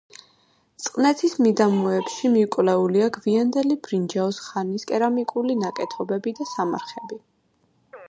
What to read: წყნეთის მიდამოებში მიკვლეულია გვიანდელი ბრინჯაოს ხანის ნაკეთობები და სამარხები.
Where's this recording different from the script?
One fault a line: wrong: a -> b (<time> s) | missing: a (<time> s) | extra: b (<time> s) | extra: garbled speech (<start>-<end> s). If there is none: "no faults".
extra: კერამიკული (4.9 s)